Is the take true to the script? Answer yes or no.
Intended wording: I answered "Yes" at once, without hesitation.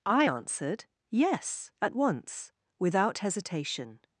yes